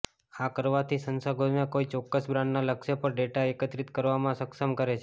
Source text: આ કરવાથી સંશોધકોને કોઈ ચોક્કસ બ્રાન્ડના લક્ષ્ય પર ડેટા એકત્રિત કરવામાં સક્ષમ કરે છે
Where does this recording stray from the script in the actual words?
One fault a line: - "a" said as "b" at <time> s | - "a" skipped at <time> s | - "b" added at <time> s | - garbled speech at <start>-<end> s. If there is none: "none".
none